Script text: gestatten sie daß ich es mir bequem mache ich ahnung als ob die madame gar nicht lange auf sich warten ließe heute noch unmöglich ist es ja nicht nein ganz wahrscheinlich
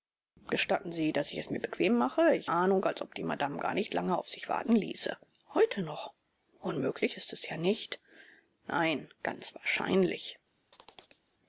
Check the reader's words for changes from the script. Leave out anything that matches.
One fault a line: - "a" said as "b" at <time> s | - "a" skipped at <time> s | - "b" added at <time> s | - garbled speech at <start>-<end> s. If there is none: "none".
none